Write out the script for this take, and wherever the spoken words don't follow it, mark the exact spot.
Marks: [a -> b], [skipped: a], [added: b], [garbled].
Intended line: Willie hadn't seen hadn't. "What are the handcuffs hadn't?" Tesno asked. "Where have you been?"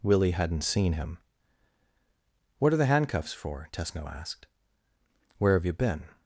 Willie hadn't seen [hadn't. -> him] "What are the handcuffs [hadn't?" -> for] Tesno asked. "Where have you been?"